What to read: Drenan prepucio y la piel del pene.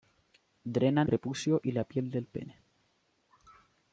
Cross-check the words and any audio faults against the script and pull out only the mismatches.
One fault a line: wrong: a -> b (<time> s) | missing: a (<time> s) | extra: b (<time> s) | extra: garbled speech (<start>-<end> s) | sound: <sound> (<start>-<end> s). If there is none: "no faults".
no faults